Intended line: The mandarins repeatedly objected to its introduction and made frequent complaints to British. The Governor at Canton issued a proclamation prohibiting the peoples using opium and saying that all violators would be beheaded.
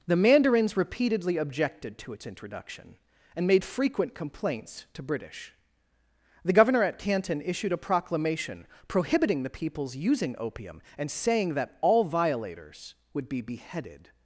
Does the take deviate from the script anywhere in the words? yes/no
no